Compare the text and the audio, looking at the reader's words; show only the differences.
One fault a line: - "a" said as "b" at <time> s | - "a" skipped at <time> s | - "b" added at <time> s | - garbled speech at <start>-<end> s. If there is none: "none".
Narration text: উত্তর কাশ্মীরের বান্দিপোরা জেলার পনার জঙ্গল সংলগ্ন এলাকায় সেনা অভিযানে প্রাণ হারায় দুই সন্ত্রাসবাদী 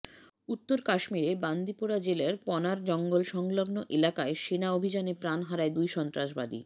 none